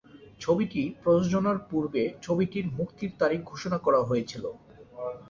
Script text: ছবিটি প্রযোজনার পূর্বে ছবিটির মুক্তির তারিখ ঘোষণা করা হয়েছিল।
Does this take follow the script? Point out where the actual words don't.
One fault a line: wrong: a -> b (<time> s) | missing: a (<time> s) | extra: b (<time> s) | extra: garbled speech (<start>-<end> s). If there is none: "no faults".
no faults